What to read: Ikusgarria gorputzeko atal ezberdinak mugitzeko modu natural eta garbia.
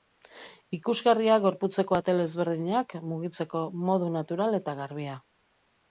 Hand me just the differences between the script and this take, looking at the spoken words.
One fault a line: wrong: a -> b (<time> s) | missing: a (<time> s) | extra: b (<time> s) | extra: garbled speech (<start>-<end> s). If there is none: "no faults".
no faults